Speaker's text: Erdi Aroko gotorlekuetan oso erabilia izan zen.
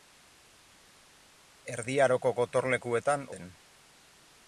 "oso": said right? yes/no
no